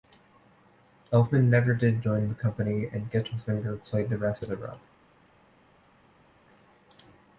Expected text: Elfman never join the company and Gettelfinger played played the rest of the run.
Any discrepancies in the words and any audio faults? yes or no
yes